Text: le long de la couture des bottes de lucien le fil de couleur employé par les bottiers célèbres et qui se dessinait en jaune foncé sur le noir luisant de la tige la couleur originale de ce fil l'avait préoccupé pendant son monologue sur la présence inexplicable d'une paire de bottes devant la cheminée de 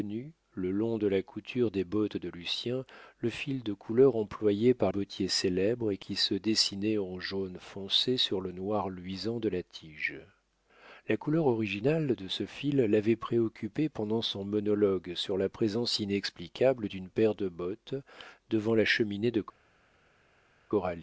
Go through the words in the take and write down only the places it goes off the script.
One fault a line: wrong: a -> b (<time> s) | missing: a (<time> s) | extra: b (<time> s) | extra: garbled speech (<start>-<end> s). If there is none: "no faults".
missing: les (4.9 s)